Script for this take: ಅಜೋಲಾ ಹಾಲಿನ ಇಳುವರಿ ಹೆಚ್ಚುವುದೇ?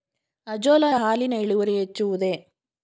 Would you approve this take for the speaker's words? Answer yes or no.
yes